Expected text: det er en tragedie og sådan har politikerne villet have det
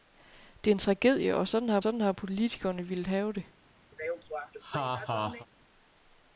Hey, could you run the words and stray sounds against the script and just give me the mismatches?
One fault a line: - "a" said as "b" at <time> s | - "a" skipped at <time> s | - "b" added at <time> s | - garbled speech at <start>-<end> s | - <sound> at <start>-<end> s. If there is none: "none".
- "sådan har" added at 1.8 s
- laugh at 3.9-5.5 s